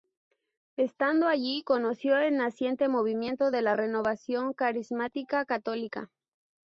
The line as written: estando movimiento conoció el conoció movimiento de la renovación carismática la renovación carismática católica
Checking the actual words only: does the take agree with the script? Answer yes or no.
no